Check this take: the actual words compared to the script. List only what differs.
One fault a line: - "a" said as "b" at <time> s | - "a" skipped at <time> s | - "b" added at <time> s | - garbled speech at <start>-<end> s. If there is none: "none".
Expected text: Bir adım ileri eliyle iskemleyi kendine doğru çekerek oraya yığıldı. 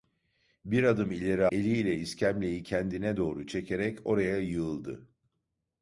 none